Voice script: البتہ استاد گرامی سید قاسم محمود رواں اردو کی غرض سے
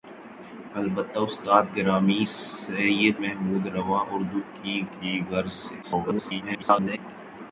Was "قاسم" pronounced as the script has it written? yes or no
no